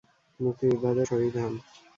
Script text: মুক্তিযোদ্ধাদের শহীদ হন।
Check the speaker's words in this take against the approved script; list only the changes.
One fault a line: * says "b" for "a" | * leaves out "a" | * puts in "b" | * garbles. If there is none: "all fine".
all fine